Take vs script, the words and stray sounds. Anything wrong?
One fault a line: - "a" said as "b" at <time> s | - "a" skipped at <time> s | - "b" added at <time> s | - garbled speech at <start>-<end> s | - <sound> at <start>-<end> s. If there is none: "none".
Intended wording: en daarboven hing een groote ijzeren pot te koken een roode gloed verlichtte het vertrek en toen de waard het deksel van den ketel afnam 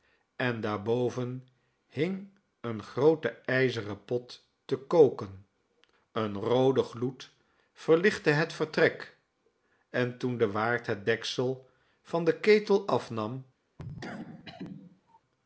- cough at 13.8-15.2 s